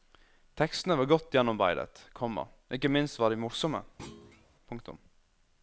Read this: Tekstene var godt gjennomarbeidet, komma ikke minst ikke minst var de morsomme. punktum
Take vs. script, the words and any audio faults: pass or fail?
fail